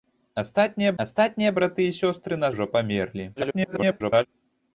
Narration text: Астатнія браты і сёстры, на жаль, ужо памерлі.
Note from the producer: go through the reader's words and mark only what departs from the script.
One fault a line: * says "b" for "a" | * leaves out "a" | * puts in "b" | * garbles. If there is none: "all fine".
* puts in "астатнія"
* leaves out "жаль"
* garbles